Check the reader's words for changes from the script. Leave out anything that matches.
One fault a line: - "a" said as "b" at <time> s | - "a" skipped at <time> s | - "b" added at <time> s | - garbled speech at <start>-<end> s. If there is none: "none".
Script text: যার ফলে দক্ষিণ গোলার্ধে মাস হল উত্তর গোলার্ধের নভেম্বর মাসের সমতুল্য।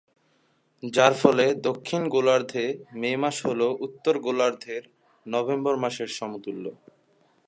- "মে" added at 2.9 s